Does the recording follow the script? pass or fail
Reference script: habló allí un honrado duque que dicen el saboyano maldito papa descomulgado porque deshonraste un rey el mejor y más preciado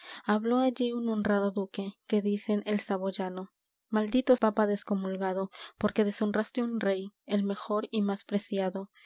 pass